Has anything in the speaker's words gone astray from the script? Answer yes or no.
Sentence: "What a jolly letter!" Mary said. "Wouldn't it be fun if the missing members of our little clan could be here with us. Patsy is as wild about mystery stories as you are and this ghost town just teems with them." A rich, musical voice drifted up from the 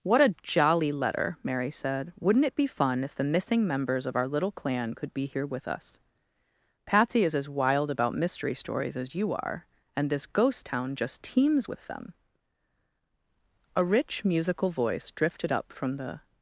no